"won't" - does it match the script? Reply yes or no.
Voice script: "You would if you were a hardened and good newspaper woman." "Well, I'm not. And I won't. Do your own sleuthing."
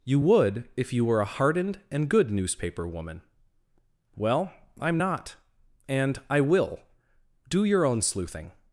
no